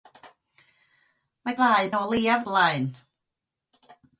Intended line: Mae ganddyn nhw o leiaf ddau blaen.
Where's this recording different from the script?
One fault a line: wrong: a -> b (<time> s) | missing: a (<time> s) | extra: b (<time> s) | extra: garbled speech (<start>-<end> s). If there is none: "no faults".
wrong: ganddyn -> ddau (1.6 s)
missing: ddau (2.4 s)